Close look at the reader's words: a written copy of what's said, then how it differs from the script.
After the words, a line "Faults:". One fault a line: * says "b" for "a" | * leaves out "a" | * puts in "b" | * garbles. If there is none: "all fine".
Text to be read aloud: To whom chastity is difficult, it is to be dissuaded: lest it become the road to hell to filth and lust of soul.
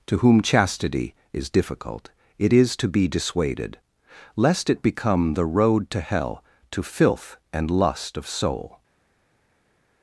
To whom chastity is difficult, it is to be dissuaded: lest it become the road to hell to filth and lust of soul.
Faults:
all fine